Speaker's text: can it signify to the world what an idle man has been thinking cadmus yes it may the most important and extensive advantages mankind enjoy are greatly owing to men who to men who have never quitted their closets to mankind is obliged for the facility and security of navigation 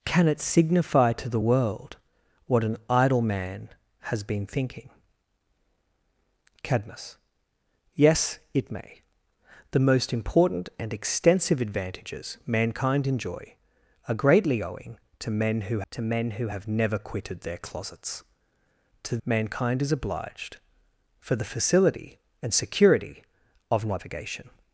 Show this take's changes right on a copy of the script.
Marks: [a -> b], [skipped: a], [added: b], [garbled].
can it signify to the world what an idle man has been thinking cadmus yes it may the most important and extensive advantages mankind enjoy are greatly owing to men who to men who have never quitted their closets to mankind is obliged for the facility and security of navigation